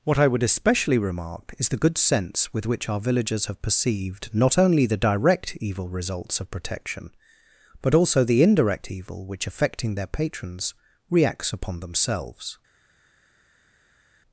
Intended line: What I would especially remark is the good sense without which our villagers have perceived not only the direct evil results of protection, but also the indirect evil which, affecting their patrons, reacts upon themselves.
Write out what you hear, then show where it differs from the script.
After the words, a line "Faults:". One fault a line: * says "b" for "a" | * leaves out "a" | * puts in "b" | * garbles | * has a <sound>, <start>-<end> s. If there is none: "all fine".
What I would especially remark is the good sense with which our villagers have perceived not only the direct evil results of protection, but also the indirect evil which, affecting their patrons, reacts upon themselves.
Faults:
* says "with" for "without"